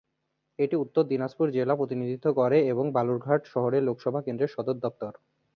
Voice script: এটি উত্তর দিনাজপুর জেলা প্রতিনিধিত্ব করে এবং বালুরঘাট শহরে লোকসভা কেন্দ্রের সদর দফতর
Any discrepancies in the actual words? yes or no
no